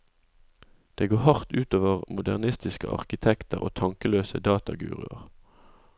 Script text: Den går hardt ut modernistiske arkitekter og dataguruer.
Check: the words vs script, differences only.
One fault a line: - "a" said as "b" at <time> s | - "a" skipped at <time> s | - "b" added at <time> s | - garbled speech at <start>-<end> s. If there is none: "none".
- "Den" said as "Det" at 0.9 s
- "over" added at 1.7 s
- "tankeløse" added at 3.8 s